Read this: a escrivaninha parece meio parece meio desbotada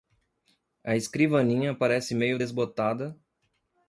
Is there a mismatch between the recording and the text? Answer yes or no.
yes